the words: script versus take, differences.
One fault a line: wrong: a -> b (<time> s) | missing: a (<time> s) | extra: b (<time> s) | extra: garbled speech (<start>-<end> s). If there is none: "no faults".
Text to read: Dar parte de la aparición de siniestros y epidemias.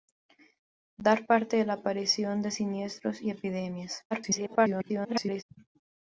extra: garbled speech (4.1-5.4 s)